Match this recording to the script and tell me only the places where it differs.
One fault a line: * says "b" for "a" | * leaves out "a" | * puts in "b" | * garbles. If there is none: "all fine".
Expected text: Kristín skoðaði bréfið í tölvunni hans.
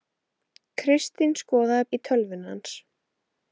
* leaves out "bréfið"